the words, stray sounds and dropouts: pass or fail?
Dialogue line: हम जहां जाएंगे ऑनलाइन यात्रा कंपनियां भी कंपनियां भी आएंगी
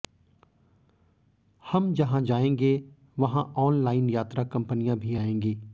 fail